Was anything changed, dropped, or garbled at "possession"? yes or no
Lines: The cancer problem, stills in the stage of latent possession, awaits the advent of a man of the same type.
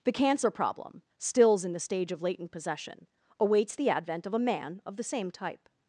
no